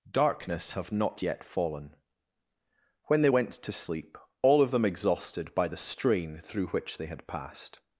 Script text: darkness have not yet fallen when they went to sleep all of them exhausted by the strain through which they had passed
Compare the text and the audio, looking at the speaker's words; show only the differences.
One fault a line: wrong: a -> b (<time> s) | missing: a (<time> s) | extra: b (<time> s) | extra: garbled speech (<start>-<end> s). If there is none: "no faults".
no faults